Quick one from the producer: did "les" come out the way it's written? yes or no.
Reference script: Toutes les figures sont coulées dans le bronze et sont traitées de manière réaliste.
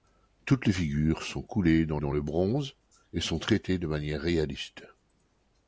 yes